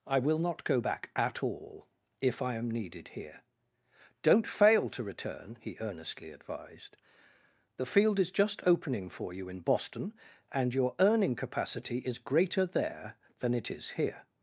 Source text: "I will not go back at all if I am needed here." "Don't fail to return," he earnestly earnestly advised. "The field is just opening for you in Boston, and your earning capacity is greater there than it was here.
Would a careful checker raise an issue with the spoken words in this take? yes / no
yes